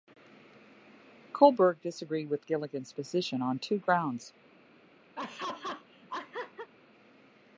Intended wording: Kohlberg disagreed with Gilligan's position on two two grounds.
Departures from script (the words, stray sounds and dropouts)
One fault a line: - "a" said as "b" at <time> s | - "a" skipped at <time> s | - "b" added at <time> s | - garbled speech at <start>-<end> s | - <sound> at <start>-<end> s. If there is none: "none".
- "two" skipped at 3.8 s
- laugh at 5.1-6.7 s